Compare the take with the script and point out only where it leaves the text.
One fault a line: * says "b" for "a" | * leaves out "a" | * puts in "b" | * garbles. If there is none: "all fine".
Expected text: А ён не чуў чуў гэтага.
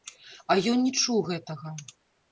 * leaves out "чуў"